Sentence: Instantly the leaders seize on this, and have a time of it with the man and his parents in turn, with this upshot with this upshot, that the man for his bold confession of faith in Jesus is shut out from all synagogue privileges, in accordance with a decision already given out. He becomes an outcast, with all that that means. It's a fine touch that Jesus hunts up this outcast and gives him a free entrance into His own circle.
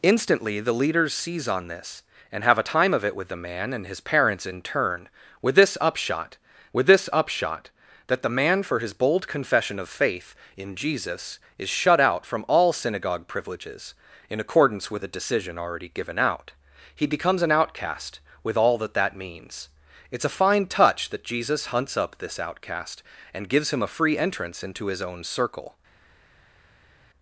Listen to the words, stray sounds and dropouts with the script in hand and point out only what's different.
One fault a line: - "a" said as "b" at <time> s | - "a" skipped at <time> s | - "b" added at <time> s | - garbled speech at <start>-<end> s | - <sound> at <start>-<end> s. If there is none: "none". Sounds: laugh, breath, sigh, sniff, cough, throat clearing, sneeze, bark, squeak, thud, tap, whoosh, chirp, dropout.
none